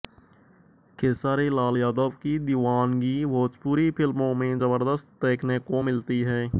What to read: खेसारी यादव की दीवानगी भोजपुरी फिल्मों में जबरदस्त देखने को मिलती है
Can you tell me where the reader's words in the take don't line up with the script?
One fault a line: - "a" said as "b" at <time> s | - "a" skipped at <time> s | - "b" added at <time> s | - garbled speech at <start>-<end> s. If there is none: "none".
- "लाल" added at 1.5 s